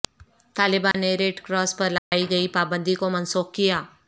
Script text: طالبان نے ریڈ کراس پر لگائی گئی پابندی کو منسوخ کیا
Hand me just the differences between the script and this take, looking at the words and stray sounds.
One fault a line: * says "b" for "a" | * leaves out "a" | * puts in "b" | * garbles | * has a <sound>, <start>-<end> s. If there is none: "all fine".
* has a dropout, 0.9-0.9 s
* has a dropout, 2.0-2.1 s